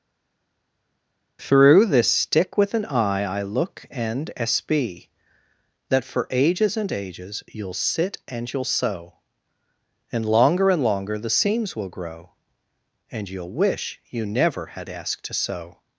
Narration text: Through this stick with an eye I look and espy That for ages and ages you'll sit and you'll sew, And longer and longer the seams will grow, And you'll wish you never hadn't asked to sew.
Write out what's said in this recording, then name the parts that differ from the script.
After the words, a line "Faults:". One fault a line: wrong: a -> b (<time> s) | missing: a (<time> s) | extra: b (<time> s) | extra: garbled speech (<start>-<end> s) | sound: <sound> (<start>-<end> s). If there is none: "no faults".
Through this stick with an eye I look and espy That for ages and ages you'll sit and you'll sew, And longer and longer the seams will grow, And you'll wish you never had asked to sew.
Faults:
wrong: hadn't -> had (14.8 s)